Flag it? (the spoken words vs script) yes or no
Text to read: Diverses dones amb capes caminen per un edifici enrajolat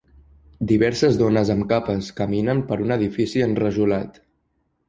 no